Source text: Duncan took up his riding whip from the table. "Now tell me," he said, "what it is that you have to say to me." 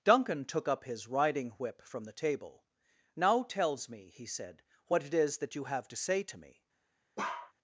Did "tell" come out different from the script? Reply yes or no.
yes